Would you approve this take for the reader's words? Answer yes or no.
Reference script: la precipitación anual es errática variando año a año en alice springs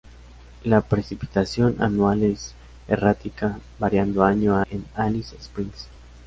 no